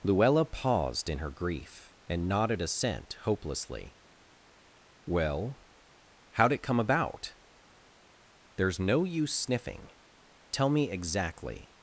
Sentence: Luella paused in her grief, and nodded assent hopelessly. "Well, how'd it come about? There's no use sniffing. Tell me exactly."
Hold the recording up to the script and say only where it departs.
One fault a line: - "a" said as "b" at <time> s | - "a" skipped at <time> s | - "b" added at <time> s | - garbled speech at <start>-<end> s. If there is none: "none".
none